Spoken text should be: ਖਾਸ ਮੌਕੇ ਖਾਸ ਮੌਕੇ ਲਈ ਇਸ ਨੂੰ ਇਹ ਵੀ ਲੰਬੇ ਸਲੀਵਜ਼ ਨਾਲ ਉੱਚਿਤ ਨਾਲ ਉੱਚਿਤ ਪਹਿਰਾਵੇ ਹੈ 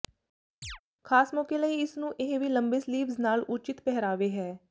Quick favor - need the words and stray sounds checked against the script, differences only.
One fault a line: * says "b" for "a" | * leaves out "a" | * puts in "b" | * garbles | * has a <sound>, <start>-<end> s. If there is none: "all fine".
* has a chirp, 0.6-0.8 s
* leaves out "ਖਾਸ ਮੌਕੇ"
* leaves out "ਨਾਲ ਉੱਚਿਤ"